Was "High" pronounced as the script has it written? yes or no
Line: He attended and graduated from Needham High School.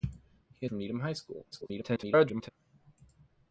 yes